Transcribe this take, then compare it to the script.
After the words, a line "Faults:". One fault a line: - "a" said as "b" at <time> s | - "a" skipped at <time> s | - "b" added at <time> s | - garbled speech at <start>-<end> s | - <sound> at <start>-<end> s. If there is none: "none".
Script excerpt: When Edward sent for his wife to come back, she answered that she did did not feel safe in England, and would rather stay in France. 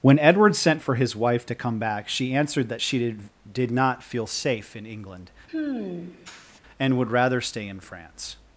When Edward sent for his wife to come back, she answered that she did did not feel safe in England, and would rather stay in France.
Faults:
- sigh at 5.5-6.6 s